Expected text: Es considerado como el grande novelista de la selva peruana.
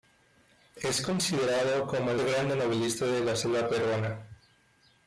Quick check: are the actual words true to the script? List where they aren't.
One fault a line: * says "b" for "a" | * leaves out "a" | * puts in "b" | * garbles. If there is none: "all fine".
all fine